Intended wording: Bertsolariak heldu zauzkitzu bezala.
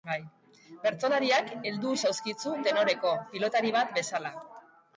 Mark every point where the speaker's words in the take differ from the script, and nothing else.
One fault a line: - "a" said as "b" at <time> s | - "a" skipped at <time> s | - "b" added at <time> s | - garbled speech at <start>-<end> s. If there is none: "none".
- "tenoreko pilotari bat" added at 2.7 s